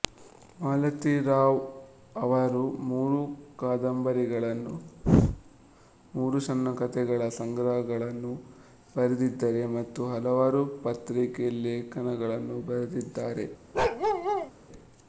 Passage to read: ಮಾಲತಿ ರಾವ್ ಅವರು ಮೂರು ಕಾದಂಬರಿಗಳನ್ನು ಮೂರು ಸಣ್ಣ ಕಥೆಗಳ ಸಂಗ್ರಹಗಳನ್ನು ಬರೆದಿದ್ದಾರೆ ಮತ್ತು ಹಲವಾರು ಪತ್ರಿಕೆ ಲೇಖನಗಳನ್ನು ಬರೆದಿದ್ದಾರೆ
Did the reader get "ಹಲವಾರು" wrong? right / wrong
right